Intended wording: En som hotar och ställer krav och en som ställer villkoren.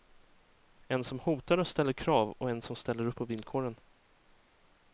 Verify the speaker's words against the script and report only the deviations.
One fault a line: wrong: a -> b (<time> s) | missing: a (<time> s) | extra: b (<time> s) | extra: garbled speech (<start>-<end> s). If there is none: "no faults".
extra: upp på (3.0 s)